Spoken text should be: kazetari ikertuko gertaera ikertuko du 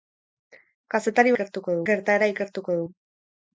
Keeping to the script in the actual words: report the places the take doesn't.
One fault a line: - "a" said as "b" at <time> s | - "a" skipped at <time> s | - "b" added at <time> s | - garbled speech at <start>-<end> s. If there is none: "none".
none